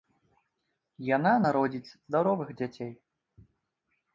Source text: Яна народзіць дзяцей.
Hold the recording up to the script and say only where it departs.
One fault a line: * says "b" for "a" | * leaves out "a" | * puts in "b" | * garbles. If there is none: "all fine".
* puts in "здаровых"